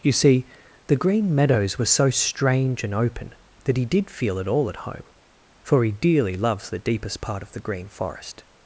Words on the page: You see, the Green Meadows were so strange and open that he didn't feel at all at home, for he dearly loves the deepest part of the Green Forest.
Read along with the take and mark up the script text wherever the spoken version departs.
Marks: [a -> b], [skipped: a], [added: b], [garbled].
You see, the Green Meadows were so strange and open that he [didn't -> did] feel at all at home, for he dearly loves the deepest part of the Green Forest.